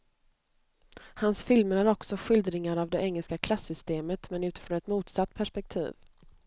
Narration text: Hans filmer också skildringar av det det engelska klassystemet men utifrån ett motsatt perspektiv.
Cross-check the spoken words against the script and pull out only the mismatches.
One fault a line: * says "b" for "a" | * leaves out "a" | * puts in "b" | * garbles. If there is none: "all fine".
* puts in "är"
* leaves out "det"